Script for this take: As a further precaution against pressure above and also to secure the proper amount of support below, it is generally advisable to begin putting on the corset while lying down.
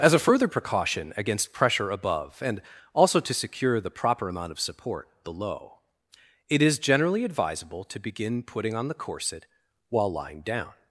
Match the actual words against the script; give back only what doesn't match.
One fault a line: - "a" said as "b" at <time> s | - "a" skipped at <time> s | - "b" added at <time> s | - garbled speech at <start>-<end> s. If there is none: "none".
none